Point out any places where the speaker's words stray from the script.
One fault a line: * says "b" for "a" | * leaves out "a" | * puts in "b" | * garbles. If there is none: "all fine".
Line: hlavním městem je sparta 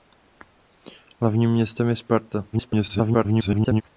* garbles